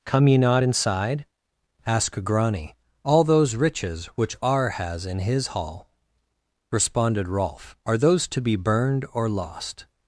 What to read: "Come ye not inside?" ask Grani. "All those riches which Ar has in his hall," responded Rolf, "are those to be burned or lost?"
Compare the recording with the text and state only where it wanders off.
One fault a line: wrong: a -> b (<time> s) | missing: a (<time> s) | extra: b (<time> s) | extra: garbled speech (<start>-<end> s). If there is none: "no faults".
no faults